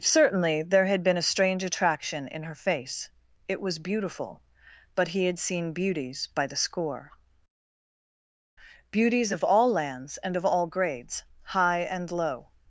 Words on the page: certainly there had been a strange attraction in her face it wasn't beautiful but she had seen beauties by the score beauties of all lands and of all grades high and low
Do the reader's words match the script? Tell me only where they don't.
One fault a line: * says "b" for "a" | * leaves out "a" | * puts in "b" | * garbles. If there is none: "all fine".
* says "was" for "wasn't"
* says "he" for "she"